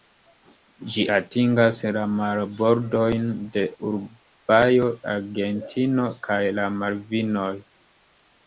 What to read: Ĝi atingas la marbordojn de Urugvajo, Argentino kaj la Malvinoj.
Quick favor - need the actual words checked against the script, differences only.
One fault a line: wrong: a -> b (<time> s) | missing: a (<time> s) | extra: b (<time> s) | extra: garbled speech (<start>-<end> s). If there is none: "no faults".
no faults